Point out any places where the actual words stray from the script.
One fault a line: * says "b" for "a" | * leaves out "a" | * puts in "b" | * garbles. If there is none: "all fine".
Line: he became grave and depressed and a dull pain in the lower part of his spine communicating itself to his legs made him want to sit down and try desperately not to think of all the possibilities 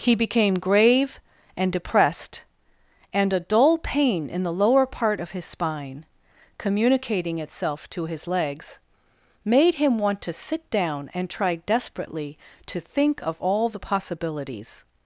* leaves out "not"